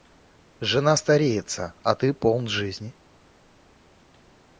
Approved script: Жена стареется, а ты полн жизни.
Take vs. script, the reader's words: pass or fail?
pass